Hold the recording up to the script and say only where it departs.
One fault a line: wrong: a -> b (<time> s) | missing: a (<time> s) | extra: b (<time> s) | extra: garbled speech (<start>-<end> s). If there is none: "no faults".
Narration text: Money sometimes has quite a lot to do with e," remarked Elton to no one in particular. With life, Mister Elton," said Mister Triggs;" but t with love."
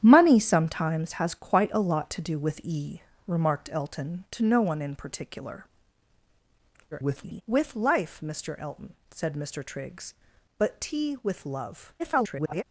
extra: garbled speech (6.9-7.4 s)
extra: garbled speech (12.0-12.6 s)